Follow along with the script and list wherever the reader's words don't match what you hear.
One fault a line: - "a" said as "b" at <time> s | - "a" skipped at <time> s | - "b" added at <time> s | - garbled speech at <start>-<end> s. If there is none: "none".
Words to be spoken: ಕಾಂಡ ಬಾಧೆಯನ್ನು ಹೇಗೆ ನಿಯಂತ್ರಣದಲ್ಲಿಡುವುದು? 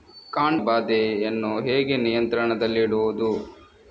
none